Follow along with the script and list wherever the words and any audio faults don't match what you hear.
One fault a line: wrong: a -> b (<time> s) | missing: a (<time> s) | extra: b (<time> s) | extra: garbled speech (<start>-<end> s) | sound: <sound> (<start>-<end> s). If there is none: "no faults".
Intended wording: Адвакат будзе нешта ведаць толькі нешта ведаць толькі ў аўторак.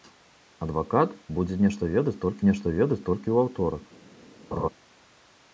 sound: laugh (4.5-4.7 s)